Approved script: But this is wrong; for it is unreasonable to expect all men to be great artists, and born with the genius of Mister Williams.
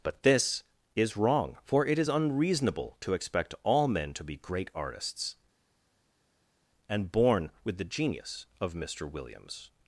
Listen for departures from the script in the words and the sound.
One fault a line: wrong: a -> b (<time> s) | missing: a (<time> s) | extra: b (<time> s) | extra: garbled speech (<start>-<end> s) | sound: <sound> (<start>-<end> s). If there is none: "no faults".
no faults